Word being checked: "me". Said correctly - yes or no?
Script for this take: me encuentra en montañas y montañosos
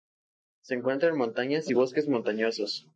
no